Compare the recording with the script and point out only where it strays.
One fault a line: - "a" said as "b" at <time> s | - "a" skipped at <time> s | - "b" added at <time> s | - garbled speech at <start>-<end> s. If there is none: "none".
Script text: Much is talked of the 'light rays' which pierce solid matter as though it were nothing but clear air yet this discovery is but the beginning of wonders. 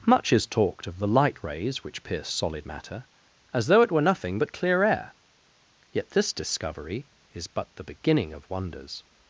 none